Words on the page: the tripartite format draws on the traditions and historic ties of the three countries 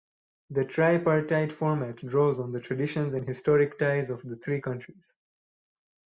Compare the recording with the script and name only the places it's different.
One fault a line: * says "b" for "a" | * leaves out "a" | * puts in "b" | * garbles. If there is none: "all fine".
all fine